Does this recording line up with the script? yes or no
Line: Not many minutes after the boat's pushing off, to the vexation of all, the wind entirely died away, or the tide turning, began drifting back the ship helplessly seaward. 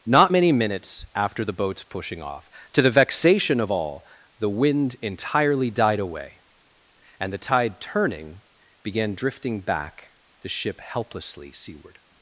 no